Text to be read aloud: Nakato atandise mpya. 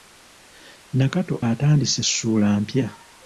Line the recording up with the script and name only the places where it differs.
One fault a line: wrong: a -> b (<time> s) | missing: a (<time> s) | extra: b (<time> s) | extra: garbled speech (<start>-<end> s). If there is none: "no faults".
extra: ssuula (2.1 s)